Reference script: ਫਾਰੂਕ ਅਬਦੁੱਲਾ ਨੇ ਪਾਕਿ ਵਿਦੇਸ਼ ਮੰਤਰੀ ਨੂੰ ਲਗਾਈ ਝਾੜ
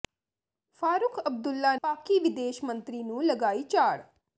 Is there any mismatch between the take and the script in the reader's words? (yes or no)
yes